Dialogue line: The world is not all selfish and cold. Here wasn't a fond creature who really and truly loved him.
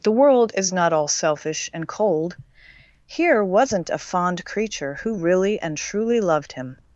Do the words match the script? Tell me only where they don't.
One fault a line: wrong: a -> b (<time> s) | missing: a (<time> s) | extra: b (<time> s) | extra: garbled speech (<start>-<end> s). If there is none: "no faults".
no faults